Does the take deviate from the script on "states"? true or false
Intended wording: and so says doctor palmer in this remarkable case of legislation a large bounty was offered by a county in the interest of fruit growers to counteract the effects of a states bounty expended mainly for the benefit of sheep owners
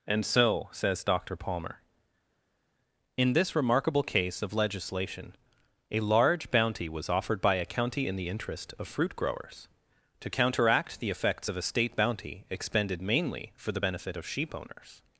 true